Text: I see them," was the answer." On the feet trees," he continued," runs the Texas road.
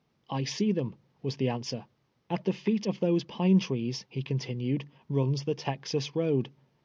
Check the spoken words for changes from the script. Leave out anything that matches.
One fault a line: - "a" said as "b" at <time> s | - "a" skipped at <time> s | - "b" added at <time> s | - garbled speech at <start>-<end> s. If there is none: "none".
- "On" said as "At" at 2.3 s
- "of those pine" added at 2.8 s